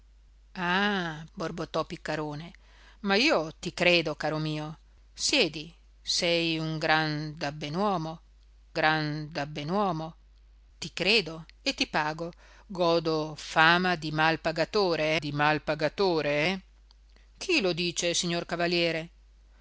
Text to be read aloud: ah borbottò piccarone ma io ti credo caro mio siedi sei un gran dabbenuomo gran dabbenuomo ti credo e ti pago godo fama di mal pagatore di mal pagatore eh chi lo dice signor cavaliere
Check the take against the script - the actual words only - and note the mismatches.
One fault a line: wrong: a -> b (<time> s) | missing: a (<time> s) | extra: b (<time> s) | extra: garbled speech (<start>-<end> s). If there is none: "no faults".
no faults